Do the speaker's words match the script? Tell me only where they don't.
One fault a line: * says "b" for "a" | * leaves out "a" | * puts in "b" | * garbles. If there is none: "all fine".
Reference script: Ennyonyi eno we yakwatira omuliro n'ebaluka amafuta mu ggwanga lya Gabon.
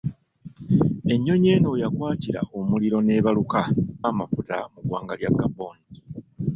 all fine